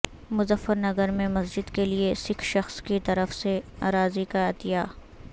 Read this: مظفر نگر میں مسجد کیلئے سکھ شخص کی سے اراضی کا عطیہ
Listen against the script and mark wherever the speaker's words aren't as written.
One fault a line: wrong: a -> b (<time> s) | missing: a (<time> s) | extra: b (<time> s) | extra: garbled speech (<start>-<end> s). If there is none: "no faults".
extra: طرف (3.0 s)